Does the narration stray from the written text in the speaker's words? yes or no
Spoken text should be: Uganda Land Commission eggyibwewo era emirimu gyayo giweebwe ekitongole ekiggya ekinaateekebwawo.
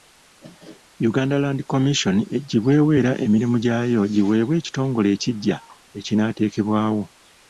no